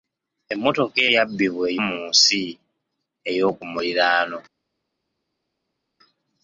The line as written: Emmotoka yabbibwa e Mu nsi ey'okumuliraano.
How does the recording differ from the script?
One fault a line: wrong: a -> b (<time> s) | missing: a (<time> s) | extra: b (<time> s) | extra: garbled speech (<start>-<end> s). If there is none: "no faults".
no faults